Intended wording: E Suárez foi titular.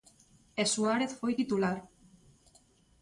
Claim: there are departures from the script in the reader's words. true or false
false